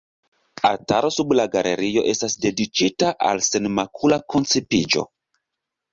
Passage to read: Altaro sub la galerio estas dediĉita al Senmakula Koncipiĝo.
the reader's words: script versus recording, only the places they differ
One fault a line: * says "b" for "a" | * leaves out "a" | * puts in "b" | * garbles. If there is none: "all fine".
all fine